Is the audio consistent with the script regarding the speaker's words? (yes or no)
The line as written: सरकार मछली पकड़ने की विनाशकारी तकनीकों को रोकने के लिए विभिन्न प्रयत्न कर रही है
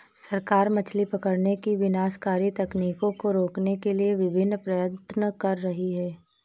yes